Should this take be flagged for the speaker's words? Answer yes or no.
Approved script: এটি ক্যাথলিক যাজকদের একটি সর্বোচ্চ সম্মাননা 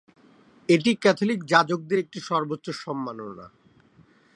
no